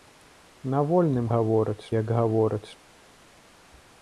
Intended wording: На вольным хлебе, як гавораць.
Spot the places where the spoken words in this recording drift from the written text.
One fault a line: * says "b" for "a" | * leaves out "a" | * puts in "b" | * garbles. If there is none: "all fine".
* says "гавораць" for "хлебе"